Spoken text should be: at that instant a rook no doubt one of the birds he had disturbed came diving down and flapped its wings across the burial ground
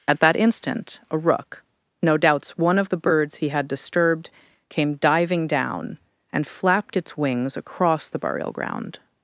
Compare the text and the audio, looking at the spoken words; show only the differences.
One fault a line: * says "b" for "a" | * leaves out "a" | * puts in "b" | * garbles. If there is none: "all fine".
* says "doubts" for "doubt"